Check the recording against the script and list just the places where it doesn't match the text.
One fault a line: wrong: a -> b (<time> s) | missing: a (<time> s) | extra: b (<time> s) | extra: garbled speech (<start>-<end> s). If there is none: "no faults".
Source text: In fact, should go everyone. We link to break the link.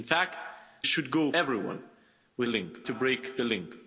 no faults